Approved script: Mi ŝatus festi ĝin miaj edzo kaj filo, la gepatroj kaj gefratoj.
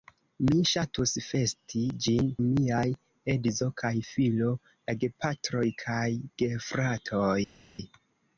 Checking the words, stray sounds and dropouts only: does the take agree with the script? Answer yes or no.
yes